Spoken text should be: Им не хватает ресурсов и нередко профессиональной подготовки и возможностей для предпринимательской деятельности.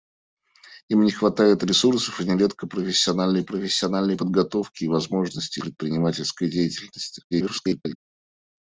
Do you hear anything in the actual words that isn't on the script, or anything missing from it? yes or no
yes